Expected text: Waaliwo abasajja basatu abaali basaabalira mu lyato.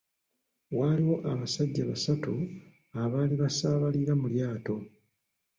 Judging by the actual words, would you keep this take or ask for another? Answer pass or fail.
pass